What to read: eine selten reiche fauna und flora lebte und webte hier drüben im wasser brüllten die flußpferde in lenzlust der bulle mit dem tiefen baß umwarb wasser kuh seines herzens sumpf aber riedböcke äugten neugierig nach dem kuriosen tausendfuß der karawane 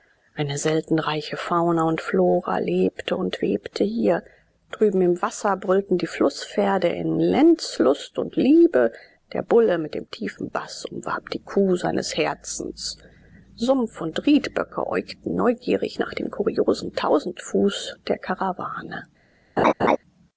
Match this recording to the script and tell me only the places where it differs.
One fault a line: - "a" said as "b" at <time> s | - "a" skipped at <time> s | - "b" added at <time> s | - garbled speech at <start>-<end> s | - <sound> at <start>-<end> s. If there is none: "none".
- "und liebe" added at 8.2 s
- "wasser" said as "die" at 11.3 s
- "aber" said as "und" at 14.0 s
- laugh at 19.6-20.0 s